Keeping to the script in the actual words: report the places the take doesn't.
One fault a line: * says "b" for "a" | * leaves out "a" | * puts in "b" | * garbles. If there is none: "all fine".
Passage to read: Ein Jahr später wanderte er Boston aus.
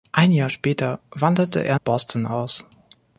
all fine